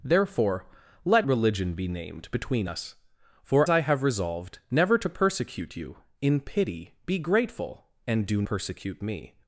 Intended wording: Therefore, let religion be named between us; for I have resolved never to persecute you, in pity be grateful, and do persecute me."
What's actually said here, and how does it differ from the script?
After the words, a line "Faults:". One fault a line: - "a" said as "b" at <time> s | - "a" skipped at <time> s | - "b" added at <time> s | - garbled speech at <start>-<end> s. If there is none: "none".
Therefore, let religion be named between us; for I have resolved never to persecute you, in pity be grateful, and do persecute me."
Faults:
none